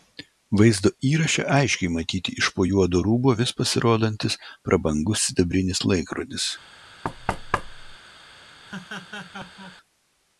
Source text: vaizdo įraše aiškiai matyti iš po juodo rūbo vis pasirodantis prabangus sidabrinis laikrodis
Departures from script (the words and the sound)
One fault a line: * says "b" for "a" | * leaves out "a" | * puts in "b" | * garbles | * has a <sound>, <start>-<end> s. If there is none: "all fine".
* has a thud, 7.0-8.0 s
* has a laugh, 8.7-9.8 s